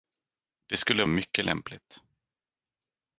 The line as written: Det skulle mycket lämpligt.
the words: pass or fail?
pass